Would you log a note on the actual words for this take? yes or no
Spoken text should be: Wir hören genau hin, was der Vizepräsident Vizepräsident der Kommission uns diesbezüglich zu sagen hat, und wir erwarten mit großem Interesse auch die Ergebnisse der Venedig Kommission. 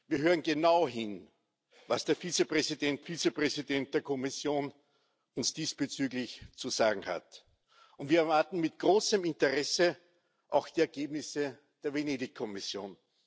no